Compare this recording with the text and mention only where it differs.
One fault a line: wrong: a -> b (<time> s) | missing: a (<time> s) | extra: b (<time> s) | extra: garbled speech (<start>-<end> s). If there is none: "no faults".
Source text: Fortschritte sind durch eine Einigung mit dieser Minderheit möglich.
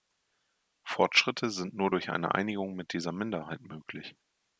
extra: nur (1.8 s)